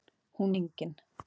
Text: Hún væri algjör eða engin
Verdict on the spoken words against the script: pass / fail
fail